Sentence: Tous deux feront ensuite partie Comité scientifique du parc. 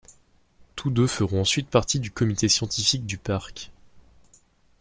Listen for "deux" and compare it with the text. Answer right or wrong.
right